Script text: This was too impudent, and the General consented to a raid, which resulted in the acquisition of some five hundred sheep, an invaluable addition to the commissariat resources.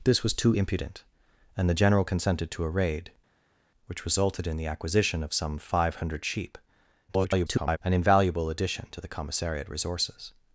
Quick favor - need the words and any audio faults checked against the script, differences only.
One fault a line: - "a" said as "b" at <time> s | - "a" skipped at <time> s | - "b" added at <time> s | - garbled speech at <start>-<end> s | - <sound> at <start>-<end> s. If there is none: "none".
- garbled speech at 7.1-7.8 s